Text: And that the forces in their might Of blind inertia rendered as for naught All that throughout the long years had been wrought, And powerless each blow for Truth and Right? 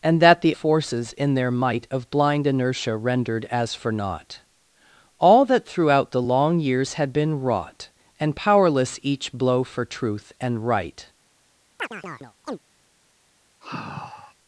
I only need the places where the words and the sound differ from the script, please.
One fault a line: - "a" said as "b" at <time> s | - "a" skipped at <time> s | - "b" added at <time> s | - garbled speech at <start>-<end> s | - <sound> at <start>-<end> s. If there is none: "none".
- chirp at 11.8-12.6 s
- sigh at 13.6-14.4 s